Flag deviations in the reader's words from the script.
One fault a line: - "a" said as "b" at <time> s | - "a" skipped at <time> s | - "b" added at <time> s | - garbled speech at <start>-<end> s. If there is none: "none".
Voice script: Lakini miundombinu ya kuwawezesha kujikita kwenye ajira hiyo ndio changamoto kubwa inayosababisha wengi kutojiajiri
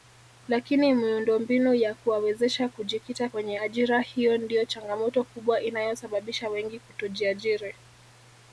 none